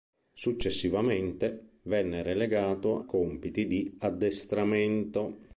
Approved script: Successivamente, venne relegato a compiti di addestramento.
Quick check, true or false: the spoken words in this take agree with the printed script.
false